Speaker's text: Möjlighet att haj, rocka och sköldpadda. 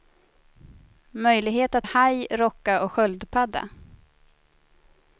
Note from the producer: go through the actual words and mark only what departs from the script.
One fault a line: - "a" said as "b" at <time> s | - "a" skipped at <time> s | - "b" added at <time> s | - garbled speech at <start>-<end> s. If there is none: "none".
none